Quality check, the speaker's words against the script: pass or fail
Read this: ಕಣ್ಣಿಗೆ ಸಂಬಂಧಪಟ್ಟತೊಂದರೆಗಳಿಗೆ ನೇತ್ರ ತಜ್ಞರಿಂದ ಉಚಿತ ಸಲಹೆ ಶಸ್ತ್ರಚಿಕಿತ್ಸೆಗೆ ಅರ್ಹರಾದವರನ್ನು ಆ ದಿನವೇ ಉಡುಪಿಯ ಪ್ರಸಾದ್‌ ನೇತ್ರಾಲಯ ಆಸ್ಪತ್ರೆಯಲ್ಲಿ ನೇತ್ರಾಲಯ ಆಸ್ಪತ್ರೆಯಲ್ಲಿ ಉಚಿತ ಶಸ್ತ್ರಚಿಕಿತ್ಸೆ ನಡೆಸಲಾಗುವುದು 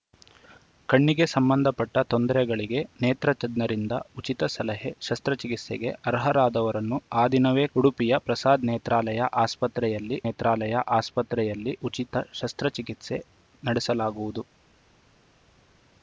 pass